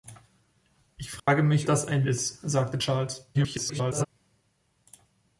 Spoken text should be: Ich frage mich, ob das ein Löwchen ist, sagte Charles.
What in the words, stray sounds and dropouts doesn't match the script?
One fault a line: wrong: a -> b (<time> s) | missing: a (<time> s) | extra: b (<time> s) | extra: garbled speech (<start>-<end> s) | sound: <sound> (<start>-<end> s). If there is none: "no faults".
sound: dropout (1.2-1.3 s)
missing: ob (1.7 s)
missing: Löwchen (2.1 s)
extra: garbled speech (3.3-4.1 s)